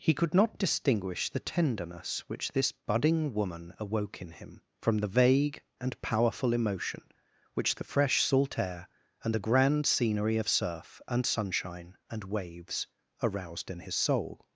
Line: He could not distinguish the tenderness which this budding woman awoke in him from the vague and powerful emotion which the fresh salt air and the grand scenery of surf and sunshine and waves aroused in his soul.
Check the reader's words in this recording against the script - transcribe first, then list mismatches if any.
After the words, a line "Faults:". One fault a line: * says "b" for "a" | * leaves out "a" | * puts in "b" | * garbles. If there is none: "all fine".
He could not distinguish the tenderness which this budding woman awoke in him from the vague and powerful emotion which the fresh salt air and the grand scenery of surf and sunshine and waves aroused in his soul.
Faults:
all fine